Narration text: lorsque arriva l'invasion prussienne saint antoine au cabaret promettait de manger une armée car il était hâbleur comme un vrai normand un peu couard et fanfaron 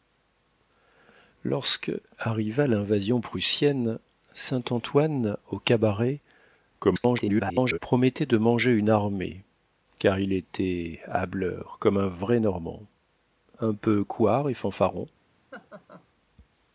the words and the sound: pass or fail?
fail